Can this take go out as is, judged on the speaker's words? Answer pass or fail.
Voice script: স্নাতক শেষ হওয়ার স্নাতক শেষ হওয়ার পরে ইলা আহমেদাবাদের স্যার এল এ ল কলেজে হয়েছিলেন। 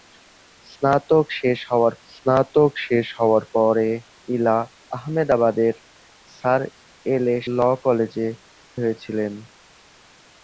pass